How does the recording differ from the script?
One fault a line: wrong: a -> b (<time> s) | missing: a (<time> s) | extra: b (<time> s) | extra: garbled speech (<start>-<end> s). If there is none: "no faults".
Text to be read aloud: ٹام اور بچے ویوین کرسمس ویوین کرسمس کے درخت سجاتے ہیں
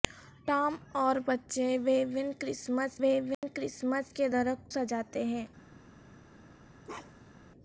no faults